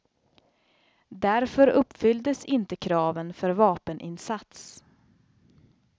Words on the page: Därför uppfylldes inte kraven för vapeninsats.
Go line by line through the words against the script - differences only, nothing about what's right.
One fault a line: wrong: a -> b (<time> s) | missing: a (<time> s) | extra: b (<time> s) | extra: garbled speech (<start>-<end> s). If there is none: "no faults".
no faults